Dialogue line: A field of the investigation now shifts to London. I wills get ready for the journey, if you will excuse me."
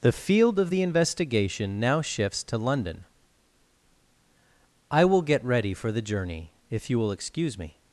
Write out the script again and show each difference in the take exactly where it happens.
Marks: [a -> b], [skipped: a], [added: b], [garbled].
[A -> The] field of the investigation now shifts to London. I [wills -> will] get ready for the journey, if you will excuse me."